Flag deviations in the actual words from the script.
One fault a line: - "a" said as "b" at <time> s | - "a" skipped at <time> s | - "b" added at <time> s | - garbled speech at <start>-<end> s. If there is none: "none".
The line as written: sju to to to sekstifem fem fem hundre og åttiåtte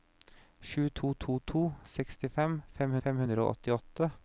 none